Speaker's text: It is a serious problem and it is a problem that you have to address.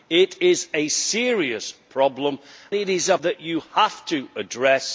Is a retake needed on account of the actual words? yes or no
yes